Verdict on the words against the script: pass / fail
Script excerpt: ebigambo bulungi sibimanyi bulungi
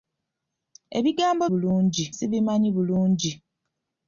pass